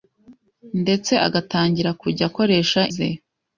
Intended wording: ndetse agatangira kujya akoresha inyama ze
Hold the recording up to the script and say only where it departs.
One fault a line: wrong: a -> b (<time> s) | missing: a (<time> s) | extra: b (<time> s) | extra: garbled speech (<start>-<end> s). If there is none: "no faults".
missing: inyama (2.8 s)